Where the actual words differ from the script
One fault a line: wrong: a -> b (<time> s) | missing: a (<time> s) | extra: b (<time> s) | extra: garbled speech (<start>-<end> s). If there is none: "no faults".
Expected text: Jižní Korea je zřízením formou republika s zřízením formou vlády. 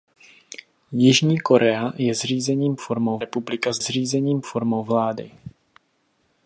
no faults